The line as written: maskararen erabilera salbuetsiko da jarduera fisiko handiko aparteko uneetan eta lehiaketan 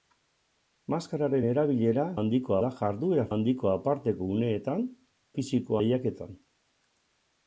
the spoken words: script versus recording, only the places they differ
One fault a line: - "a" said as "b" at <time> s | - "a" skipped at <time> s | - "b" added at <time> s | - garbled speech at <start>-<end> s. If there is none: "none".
- "salbuetsiko" said as "handiko" at 2.2 s
- "fisiko" skipped at 3.2 s
- "eta" said as "fisiko" at 5.4 s